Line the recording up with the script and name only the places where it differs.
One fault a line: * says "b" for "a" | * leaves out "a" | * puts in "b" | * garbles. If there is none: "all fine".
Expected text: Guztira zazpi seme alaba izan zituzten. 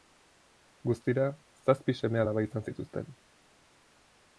all fine